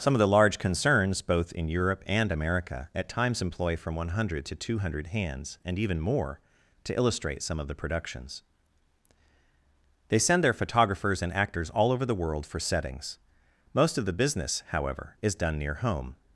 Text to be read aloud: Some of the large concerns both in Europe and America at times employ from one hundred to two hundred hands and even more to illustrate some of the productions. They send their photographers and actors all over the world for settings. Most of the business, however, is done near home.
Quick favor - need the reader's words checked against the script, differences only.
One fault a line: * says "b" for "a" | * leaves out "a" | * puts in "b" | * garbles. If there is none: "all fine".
all fine